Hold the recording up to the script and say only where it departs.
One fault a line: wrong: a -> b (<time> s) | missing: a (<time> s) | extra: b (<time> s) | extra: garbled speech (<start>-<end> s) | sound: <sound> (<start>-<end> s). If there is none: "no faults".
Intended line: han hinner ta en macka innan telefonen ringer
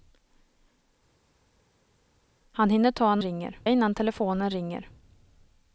wrong: macka -> ringer (3.2 s)